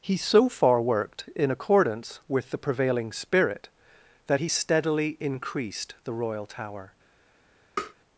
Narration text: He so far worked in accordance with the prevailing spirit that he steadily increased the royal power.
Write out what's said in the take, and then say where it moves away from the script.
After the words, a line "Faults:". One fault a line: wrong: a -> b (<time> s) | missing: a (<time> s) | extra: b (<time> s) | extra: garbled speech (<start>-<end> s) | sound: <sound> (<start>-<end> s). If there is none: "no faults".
He so far worked in accordance with the prevailing spirit that he steadily increased the royal tower.
Faults:
wrong: power -> tower (6.4 s)
sound: tap (7.8-7.9 s)